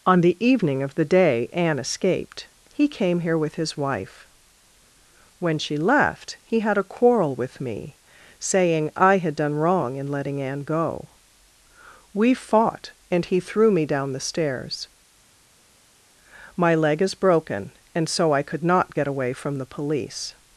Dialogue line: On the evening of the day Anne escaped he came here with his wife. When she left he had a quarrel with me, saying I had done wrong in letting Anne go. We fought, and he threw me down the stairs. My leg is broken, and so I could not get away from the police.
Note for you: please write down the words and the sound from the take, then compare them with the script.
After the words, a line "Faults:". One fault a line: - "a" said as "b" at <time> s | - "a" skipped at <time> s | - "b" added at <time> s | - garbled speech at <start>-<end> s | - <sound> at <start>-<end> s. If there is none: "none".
On the evening of the day Anne escaped he came here with his wife. When she left he had a quarrel with me, saying I had done wrong in letting Anne go. We fought, and he threw me down the stairs. My leg is broken, and so I could not get away from the police.
Faults:
none